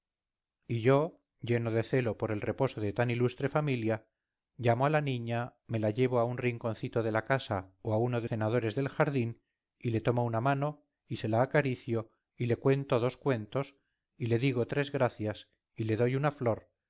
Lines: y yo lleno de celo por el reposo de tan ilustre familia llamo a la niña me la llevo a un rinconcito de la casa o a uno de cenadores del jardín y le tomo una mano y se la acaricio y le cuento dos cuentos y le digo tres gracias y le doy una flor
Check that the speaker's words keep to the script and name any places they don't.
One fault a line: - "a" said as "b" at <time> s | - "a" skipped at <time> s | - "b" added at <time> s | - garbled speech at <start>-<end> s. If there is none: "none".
none